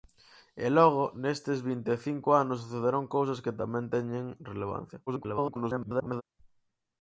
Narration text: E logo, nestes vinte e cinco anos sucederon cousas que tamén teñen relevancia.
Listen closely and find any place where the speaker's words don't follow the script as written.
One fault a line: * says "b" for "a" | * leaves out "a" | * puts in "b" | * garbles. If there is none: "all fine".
* garbles